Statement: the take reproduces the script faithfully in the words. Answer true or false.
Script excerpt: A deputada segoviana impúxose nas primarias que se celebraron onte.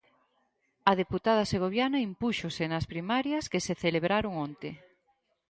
true